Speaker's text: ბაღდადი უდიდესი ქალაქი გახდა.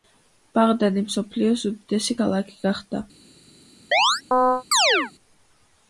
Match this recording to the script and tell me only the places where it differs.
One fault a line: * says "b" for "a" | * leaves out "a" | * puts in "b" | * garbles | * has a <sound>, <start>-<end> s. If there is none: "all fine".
* puts in "მსოფლიოს"
* has a chirp, 3.9-5.1 s